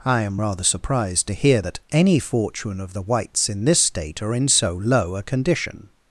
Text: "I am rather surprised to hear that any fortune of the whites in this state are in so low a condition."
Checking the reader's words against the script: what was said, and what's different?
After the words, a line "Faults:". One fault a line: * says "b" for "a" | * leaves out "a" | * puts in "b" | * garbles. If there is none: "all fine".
"I am rather surprised to hear that any fortune of the whites in this state are in so low a condition."
Faults:
all fine